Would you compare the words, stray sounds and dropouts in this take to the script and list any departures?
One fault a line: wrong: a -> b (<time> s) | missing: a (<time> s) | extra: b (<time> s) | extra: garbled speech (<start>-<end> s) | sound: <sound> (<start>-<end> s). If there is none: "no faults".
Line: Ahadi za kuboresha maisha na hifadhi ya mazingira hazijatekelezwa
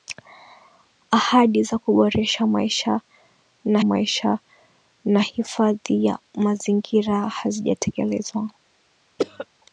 extra: maisha na (3.8 s)
sound: cough (9.2-9.5 s)